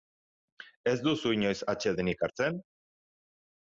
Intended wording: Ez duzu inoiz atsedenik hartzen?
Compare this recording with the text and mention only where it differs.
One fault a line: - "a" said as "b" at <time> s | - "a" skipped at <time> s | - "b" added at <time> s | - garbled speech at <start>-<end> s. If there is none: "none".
none